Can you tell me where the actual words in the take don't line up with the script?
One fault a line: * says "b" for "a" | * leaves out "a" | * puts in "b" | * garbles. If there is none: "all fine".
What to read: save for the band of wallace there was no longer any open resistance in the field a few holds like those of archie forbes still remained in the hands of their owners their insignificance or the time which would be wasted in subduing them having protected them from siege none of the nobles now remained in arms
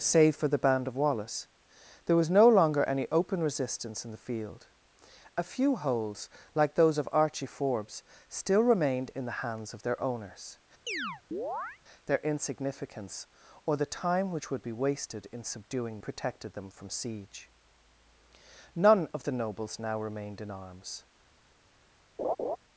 * leaves out "them having"